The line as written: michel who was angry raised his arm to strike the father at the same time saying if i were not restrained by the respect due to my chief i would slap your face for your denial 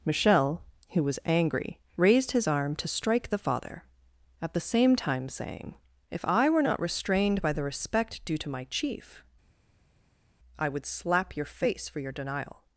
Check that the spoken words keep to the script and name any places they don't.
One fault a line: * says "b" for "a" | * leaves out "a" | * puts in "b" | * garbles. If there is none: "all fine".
all fine